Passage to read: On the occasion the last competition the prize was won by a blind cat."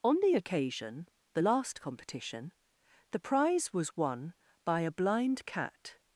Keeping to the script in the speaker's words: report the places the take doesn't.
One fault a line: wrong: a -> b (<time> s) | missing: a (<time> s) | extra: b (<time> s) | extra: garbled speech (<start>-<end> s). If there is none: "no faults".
no faults